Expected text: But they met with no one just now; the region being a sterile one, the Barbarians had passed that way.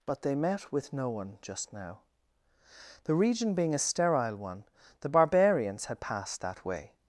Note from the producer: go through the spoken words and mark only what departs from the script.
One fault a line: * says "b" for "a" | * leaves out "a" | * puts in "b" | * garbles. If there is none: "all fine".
all fine